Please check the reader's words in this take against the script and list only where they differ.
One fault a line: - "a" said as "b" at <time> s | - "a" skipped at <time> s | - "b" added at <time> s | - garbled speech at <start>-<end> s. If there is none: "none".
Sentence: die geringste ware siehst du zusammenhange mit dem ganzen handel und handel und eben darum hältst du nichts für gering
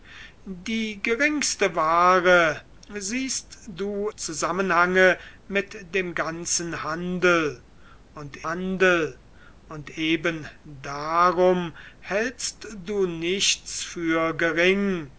none